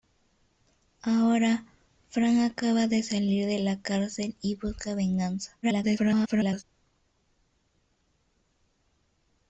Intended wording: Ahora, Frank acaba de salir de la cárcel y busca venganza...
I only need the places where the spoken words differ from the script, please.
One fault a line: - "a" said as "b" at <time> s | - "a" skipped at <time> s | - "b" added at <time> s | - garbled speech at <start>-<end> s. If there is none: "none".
- garbled speech at 5.6-6.6 s